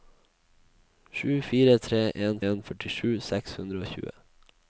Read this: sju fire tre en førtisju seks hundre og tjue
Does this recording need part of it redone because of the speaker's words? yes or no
yes